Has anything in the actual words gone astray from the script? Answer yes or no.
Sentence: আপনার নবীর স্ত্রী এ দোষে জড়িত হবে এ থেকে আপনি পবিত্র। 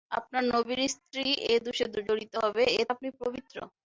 yes